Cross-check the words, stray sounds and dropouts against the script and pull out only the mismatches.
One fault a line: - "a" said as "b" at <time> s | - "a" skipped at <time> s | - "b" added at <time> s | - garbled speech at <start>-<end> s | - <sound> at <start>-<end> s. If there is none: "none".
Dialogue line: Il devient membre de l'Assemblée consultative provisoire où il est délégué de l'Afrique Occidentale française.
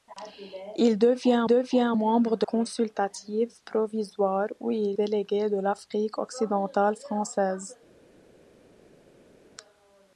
- "devient" added at 1.4 s
- "l'Assemblée" skipped at 2.5 s
- "est" skipped at 5.0 s